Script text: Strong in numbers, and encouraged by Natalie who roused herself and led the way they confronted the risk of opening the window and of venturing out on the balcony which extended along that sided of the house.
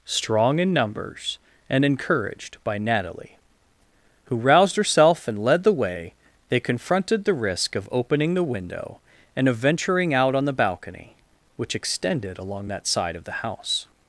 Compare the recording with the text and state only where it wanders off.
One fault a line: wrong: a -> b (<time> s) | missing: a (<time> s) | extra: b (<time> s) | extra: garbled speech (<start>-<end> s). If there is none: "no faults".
wrong: sided -> side (12.9 s)